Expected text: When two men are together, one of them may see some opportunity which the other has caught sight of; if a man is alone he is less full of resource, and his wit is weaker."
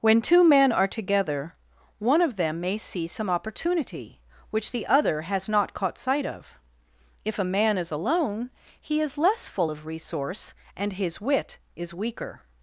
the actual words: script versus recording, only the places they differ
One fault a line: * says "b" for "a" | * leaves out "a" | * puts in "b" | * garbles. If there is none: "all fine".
* puts in "not"